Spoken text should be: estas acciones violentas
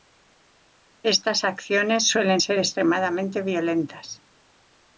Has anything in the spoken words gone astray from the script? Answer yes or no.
yes